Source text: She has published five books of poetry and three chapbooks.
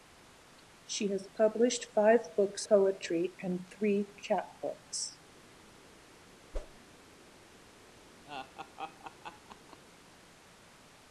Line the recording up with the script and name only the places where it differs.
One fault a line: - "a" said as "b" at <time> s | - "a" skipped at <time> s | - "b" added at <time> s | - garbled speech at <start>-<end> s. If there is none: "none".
- "of" skipped at 2.6 s